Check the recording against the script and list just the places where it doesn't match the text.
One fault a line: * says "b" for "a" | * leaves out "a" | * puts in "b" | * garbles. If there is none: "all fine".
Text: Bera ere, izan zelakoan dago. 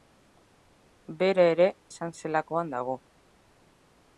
all fine